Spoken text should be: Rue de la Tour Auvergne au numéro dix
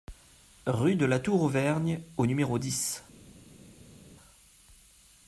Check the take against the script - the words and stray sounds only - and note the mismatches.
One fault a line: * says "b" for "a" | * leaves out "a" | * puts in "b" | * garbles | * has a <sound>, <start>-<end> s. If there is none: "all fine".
all fine